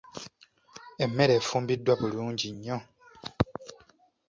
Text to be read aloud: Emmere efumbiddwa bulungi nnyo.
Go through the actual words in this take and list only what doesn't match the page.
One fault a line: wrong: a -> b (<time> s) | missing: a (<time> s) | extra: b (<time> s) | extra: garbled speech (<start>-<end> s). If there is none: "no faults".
no faults